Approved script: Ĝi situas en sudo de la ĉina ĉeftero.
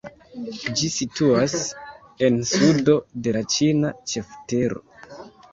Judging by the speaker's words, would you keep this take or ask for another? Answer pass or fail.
pass